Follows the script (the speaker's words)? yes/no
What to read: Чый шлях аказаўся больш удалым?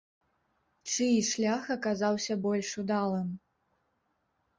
yes